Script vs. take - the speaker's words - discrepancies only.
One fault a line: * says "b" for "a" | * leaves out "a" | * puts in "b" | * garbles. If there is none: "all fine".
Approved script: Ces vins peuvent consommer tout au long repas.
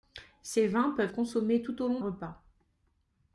all fine